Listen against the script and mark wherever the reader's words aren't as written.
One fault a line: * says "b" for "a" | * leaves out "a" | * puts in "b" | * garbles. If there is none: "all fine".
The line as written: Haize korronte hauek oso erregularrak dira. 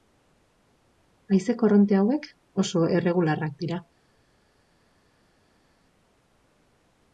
all fine